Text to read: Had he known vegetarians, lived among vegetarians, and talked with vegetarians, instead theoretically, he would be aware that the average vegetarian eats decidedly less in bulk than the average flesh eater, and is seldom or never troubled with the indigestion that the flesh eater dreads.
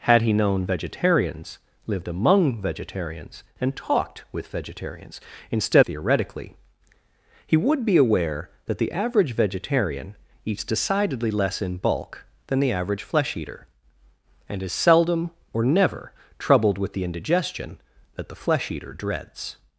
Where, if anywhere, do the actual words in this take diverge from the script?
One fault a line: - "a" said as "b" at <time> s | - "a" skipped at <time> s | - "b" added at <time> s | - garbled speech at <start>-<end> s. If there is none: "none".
none